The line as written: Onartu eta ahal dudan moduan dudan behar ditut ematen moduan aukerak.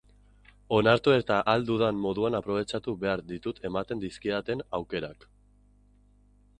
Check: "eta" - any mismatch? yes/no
no